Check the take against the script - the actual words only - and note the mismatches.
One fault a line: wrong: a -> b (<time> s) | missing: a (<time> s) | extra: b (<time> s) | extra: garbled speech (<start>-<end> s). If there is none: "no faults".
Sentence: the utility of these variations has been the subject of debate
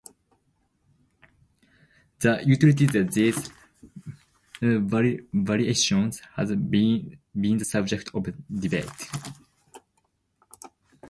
no faults